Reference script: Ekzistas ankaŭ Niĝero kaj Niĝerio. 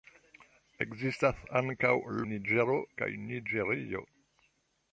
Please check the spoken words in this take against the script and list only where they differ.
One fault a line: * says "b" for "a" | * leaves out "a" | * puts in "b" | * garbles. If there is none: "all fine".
all fine